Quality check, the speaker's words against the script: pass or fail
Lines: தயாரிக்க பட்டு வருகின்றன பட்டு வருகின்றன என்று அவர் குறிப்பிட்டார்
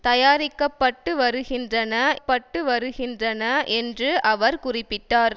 pass